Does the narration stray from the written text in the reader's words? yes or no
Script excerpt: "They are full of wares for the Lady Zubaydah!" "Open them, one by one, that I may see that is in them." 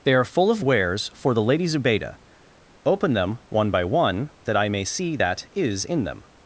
no